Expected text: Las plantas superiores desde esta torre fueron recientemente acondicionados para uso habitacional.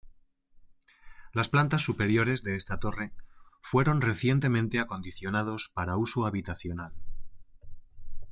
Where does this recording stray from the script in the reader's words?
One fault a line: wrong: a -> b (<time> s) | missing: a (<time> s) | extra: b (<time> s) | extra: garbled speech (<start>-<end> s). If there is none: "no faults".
wrong: desde -> de (2.4 s)